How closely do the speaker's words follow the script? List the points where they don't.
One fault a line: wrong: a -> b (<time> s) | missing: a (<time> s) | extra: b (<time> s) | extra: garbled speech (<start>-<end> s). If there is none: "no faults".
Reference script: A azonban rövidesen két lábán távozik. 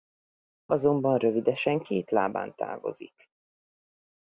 no faults